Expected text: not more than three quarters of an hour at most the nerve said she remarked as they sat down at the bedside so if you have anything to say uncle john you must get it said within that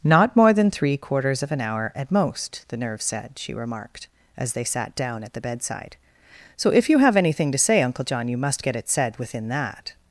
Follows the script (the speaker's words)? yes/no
yes